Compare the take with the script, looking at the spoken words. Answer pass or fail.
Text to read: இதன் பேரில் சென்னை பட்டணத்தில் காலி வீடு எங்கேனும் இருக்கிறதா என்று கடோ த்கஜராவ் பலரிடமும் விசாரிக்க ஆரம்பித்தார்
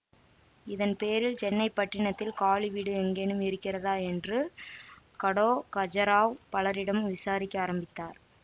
pass